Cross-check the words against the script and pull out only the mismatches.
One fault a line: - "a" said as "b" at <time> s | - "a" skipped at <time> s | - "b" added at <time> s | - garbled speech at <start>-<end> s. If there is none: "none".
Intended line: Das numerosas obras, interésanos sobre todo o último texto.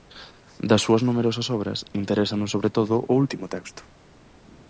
- "súas" added at 0.8 s